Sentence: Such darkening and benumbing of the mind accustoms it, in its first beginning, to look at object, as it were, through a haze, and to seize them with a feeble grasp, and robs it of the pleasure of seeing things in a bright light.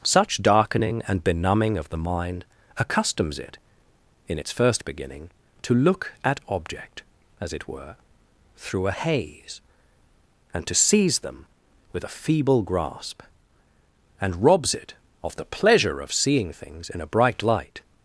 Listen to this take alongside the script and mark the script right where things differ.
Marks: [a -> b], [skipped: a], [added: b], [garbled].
Such darkening and benumbing of the mind accustoms it, in its first beginning, to look at object, as it were, through a haze, and to seize them with a feeble grasp, and robs it of the pleasure of seeing things in a bright light.